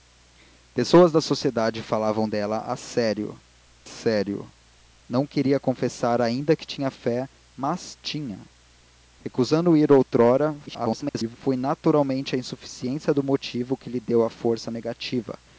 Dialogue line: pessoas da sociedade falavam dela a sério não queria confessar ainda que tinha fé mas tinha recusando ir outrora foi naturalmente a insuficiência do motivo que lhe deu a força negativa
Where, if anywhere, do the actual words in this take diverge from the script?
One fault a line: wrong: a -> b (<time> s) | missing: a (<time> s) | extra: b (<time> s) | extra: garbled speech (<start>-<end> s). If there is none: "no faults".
extra: sério (3.8 s)
extra: garbled speech (10.7-11.4 s)